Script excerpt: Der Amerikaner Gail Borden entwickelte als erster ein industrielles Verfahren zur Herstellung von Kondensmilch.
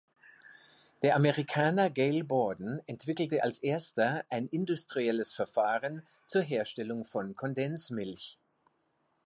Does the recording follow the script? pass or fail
pass